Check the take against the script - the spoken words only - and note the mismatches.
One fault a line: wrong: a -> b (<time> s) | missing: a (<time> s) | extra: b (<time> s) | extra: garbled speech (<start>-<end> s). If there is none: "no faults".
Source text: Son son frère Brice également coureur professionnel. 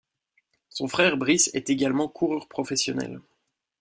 missing: son (0.9 s)
extra: est (1.5 s)